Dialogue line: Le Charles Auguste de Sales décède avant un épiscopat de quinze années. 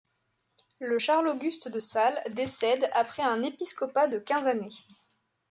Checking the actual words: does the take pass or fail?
fail